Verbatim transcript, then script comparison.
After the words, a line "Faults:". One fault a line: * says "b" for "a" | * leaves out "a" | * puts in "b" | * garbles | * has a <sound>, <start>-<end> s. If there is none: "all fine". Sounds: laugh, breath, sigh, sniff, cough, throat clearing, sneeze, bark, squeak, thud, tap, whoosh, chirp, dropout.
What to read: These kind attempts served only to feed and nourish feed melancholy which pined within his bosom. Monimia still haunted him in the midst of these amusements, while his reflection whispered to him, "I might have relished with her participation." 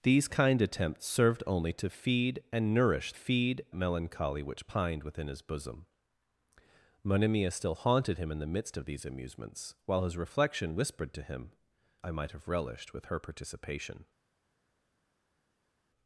These kind attempts served only to feed and nourish feed melancholy which pined within his bosom. Monimia still haunted him in the midst of these amusements, while his reflection whispered to him, "I might have relished with her participation."
Faults:
all fine